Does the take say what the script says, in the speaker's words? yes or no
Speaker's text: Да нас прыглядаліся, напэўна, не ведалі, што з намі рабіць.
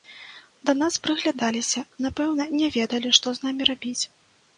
yes